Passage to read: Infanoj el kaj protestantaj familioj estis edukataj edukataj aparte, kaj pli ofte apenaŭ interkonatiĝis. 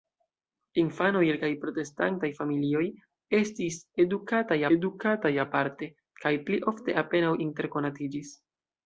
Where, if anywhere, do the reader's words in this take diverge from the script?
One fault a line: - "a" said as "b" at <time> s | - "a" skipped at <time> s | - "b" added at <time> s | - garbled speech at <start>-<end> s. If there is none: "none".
none